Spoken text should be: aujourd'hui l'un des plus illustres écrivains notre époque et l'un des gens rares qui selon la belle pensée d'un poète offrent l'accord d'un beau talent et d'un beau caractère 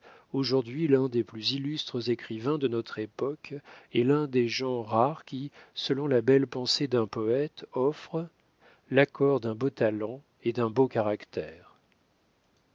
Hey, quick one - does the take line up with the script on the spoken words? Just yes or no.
no